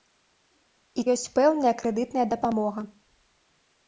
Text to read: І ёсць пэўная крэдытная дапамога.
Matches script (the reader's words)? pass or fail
pass